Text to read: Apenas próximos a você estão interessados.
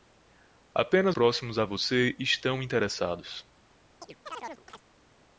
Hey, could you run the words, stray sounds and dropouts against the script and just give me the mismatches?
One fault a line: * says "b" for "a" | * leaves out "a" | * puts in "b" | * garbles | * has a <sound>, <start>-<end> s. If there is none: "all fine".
* has a chirp, 4.0-4.8 s